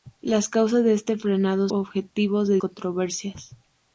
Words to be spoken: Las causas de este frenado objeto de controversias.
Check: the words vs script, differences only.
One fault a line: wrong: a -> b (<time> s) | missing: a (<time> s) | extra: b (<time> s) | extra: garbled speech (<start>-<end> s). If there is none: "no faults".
no faults